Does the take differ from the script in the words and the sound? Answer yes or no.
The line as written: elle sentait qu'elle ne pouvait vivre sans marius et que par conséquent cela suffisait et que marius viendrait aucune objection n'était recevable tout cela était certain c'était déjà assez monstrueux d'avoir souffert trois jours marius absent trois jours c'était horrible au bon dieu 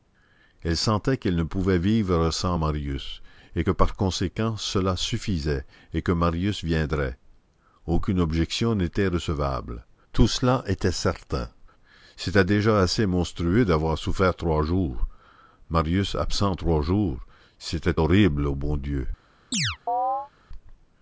yes